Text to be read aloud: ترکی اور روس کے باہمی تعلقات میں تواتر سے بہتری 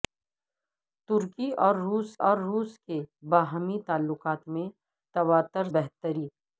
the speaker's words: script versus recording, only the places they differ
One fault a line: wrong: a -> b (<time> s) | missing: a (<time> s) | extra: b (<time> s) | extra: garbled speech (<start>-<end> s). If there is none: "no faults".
extra: اور روس (2.2 s)
missing: سے (5.7 s)